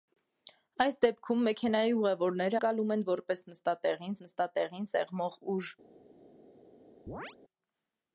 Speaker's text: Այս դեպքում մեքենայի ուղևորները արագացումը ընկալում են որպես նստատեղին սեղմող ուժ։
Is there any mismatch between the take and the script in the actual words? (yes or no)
yes